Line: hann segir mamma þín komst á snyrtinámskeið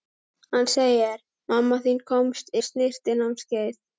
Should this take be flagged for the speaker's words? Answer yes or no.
no